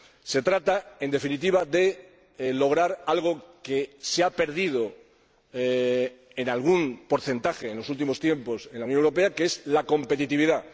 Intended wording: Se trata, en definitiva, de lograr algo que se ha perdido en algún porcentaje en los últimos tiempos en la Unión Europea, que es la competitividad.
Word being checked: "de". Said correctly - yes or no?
yes